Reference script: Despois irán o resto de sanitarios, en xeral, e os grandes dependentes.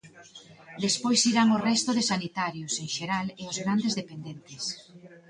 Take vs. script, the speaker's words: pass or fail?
pass